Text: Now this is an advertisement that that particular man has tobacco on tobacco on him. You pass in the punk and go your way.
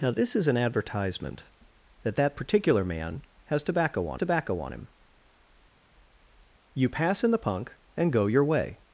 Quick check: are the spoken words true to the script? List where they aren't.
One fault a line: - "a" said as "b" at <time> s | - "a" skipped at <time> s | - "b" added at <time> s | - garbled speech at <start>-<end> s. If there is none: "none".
none